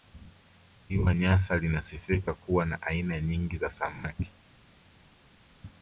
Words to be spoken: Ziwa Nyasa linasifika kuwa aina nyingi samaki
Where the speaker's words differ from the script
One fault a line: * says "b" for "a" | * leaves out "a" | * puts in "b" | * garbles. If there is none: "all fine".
* puts in "na"
* puts in "za"